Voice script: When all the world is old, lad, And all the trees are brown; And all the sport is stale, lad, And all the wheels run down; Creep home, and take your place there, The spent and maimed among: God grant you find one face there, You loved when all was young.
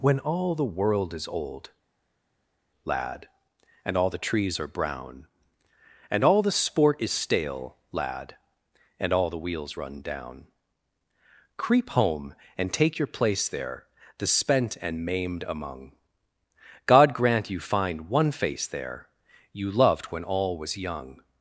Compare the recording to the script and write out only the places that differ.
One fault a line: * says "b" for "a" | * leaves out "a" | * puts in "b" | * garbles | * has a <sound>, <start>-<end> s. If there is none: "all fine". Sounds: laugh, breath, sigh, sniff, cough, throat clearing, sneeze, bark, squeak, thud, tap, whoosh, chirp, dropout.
all fine